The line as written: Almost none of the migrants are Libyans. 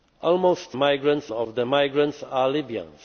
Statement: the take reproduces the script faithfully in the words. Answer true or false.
false